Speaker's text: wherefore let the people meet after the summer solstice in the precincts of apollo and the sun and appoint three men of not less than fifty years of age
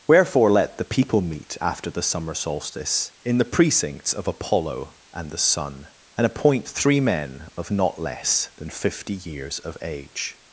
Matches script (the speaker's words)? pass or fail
pass